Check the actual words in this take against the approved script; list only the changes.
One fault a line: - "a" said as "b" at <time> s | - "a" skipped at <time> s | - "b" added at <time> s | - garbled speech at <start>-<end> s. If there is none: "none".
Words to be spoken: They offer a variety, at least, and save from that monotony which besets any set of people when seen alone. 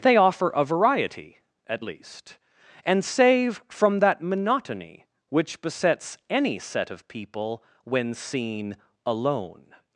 none